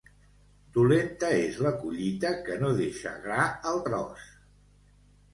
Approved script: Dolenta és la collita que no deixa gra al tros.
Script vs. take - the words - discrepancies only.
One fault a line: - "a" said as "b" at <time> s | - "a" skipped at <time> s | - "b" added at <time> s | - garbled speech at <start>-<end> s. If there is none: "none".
none